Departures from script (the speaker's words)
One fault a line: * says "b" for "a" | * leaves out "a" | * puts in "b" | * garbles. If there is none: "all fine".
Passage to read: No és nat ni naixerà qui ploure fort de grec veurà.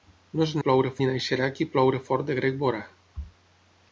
* says "ploure" for "nat"